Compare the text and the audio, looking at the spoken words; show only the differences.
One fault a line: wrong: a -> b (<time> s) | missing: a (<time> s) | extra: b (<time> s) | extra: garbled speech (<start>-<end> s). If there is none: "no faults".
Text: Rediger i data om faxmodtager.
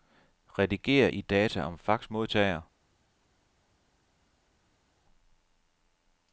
no faults